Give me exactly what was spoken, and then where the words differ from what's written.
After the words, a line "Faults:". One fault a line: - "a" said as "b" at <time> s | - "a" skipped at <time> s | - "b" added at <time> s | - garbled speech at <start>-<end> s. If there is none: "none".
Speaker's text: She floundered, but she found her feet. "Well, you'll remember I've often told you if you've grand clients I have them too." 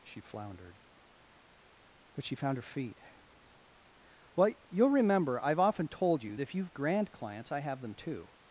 She floundered, but she found her feet. "Well, you'll remember I've often told you if you've grand clients I have them too."
Faults:
none